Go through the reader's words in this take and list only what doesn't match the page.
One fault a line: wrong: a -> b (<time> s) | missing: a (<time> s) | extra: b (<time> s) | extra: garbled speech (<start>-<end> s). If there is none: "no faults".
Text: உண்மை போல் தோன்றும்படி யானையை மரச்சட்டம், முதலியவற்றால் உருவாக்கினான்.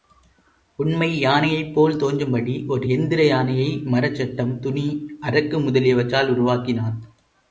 extra: யானையைப் (1.2 s)
extra: ஒரு எந்திர (2.7 s)
extra: துணி அரக்கு (4.6 s)